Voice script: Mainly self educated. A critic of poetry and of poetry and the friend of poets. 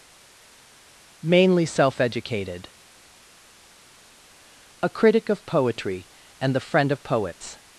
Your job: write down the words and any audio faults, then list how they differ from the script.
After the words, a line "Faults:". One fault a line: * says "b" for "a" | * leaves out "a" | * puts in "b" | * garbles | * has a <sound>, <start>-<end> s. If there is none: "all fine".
Mainly self educated. A critic of poetry and the friend of poets.
Faults:
* leaves out "of poetry and"